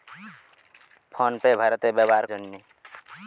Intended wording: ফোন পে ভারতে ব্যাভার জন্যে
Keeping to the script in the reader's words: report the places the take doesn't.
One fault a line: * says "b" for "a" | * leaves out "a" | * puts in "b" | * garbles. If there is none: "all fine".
all fine